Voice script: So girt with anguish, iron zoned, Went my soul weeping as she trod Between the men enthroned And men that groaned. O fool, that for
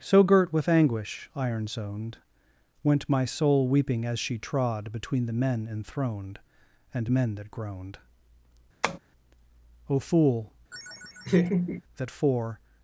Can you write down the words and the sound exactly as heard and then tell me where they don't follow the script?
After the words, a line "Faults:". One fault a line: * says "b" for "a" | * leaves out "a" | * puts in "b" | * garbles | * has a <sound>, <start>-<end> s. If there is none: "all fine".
So girt with anguish, iron zoned, Went my soul weeping as she trod Between the men enthroned And men that groaned. O fool, that for
Faults:
* has a tap, 8.8-9.0 s
* has a laugh, 10.7-11.8 s